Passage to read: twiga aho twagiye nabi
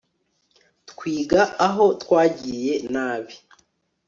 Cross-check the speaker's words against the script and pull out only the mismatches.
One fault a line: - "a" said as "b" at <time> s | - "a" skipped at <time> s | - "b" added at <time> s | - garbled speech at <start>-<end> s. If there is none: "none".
none